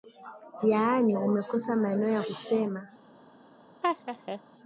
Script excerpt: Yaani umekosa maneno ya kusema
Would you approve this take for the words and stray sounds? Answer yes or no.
no